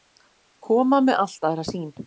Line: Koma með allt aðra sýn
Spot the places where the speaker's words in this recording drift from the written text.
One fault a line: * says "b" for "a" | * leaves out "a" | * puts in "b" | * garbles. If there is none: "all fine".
all fine